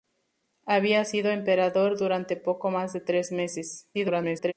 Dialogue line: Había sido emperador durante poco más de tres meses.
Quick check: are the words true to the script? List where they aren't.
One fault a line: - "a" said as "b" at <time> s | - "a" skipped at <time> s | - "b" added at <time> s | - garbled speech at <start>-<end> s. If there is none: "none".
- garbled speech at 3.9-4.5 s